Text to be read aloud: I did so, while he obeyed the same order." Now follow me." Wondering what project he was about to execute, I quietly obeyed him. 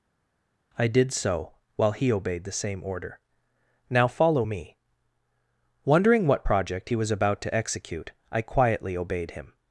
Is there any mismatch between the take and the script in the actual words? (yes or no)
no